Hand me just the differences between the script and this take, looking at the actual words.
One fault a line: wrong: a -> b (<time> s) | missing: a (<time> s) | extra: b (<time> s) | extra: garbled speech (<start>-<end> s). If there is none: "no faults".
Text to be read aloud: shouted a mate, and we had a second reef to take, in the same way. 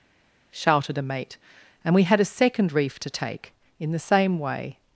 no faults